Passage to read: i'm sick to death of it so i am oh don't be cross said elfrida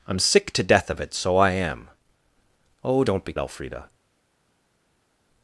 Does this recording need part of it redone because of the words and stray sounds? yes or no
yes